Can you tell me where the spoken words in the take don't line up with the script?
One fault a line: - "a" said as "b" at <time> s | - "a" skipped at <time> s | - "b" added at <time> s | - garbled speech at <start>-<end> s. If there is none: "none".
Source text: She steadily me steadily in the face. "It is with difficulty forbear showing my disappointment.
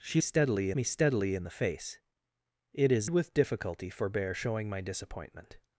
none